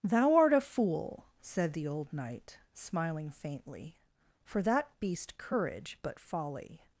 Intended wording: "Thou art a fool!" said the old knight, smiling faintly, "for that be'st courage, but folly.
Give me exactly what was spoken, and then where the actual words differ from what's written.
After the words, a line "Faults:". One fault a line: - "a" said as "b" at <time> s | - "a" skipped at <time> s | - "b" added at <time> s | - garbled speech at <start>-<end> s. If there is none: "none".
"Thou art a fool!" said the old knight, smiling faintly, "for that be'st courage, but folly.
Faults:
none